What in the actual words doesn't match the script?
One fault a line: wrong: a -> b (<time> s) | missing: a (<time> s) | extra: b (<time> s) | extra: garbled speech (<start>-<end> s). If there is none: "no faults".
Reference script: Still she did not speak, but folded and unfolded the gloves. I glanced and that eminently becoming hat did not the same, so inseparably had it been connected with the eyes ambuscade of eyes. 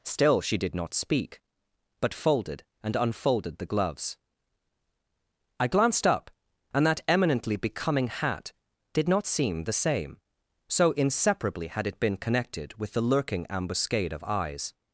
extra: up (6.1 s)
extra: seem (9.3 s)
wrong: eyes -> lurking (13.0 s)